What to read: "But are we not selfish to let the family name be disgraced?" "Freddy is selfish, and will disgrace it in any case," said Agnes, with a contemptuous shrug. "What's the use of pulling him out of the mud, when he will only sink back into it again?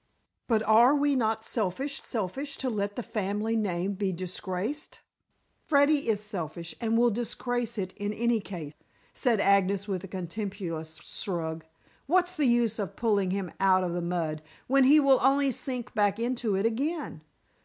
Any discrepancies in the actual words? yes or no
yes